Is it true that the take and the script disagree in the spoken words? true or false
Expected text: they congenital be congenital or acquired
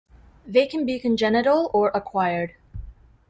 true